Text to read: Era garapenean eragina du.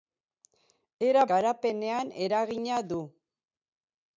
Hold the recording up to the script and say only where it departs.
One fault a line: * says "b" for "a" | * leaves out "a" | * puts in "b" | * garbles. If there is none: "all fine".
all fine